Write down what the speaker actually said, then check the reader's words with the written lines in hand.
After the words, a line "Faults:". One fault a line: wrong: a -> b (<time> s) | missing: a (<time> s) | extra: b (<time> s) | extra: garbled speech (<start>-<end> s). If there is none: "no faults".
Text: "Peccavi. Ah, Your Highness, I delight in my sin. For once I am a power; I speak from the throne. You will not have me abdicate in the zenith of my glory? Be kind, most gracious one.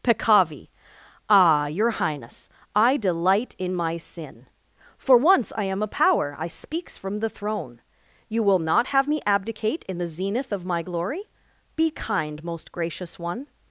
"Peccavi. Ah, Your Highness, I delight in my sin. For once I am a power; I speaks from the throne. You will not have me abdicate in the zenith of my glory? Be kind, most gracious one.
Faults:
wrong: speak -> speaks (6.5 s)